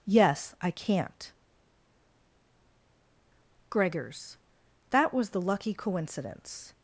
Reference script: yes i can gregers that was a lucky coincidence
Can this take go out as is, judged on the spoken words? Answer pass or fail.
fail